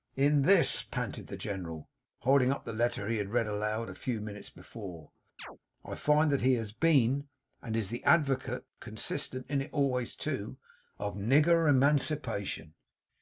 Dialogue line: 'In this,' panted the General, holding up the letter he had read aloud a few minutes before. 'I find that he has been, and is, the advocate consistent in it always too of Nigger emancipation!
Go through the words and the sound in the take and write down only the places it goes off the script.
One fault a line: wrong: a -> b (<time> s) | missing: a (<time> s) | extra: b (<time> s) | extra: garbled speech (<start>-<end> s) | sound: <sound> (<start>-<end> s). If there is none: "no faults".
sound: chirp (5.4-5.6 s)